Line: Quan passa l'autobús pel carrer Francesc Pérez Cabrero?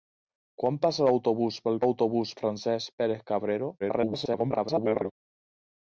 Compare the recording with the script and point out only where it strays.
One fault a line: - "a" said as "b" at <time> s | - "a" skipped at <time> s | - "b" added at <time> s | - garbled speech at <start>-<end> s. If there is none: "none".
- "carrer" said as "l'autobús" at 1.8 s
- garbled speech at 3.8-5.1 s